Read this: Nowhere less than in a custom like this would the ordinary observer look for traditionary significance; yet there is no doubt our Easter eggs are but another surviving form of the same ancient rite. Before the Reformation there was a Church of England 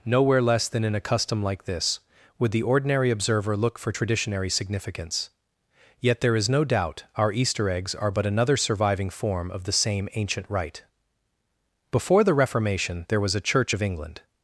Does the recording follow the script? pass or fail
pass